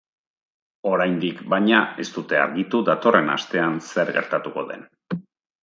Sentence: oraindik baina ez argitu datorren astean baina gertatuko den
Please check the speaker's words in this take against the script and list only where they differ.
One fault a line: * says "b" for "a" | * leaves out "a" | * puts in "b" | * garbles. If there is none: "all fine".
* puts in "dute"
* says "zer" for "baina"